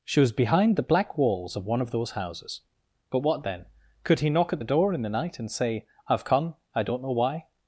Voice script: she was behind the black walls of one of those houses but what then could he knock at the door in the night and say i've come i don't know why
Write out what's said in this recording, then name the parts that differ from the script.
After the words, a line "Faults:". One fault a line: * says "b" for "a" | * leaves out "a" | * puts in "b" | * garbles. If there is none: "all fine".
she was behind the black walls of one of those houses but what then could he knock at the door in the night and say i've come i don't know why
Faults:
all fine